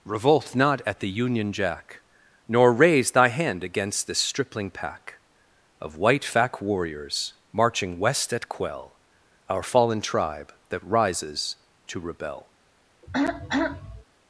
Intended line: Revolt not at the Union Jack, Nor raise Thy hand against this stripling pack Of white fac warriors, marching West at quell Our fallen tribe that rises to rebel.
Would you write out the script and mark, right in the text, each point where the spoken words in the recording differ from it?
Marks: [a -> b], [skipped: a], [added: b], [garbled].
Revolt not at the Union Jack, Nor raise Thy hand against this stripling pack Of white fac warriors, marching West at quell Our fallen tribe that rises to rebel.